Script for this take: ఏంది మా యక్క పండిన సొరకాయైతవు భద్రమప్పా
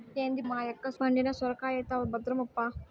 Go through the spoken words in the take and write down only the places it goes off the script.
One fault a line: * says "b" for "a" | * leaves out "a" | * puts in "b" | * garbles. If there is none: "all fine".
all fine